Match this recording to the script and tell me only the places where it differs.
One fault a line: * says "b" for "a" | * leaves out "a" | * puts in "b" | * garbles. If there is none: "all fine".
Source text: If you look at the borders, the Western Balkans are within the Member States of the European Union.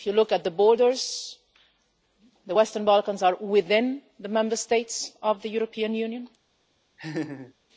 all fine